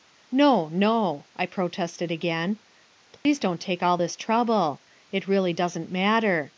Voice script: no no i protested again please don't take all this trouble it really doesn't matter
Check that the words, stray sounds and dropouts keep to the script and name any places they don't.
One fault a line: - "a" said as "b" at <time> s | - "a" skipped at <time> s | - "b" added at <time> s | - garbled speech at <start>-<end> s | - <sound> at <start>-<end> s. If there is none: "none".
- dropout at 3.2-3.3 s